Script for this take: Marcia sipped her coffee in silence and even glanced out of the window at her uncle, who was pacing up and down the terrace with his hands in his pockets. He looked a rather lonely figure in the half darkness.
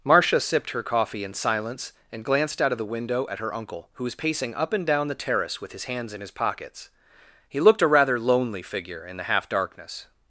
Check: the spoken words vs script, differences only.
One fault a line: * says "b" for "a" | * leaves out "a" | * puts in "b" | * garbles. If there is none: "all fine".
* leaves out "even"